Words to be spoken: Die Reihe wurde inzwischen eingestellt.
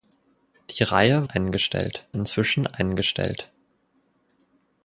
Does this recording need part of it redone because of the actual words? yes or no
yes